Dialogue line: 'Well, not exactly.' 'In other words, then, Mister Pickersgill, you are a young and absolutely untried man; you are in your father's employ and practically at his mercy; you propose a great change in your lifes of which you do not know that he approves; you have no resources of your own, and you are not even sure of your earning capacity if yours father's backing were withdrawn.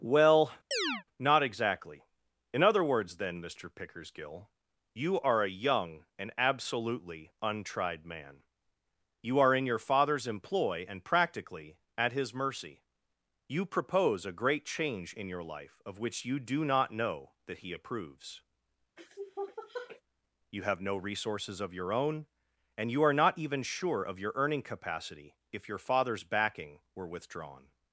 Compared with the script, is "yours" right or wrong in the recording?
wrong